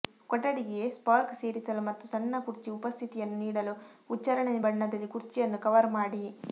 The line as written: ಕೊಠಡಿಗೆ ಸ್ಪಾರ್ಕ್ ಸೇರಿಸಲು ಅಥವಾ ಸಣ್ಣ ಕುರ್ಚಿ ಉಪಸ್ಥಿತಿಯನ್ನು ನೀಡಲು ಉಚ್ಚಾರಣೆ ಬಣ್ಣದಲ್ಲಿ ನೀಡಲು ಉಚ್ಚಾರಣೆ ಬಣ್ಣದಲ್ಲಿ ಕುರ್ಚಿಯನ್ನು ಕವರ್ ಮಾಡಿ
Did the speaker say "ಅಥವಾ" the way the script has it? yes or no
no